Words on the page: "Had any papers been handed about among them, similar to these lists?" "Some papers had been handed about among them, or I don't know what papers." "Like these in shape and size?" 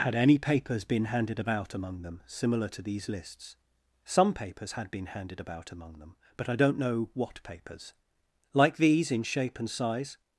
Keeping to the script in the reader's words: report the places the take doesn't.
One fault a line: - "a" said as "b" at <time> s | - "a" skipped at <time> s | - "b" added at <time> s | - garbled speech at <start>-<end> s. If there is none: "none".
- "or" said as "but" at 6.4 s